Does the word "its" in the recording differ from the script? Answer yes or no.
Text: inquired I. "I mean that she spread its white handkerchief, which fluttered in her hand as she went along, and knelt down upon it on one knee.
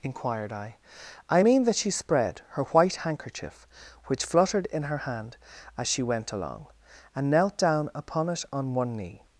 yes